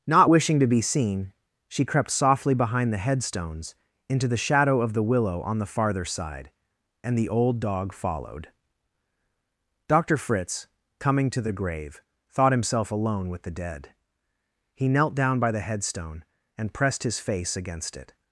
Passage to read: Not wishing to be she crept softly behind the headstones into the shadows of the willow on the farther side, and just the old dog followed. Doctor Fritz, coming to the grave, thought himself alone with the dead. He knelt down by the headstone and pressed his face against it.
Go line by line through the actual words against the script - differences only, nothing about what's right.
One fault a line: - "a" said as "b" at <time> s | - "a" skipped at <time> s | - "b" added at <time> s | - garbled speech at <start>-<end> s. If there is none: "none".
- "seen" added at 0.8 s
- "shadows" said as "shadow" at 4.4 s
- "just" skipped at 7.2 s